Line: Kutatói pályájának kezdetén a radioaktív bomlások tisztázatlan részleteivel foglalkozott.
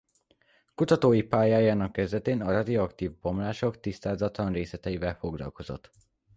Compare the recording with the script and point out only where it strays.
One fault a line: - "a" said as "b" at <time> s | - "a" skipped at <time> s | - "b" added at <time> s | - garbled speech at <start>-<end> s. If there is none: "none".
none